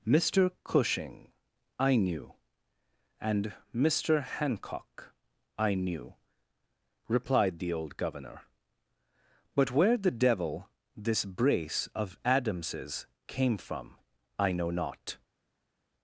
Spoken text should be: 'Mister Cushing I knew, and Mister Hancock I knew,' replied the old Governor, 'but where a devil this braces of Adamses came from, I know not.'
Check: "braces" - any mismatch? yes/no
yes